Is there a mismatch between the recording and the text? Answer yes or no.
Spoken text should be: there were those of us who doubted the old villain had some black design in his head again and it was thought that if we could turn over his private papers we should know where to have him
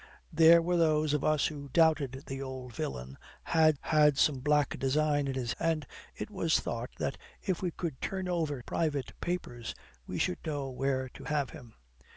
yes